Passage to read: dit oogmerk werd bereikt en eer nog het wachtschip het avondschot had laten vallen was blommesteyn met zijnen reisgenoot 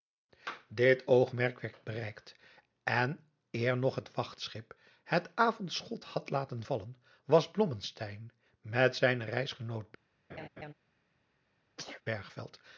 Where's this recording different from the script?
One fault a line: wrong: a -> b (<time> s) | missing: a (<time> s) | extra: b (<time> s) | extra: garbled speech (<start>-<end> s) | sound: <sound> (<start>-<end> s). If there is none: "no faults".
sound: laugh (10.3-10.7 s)
sound: sneeze (11.8-12.0 s)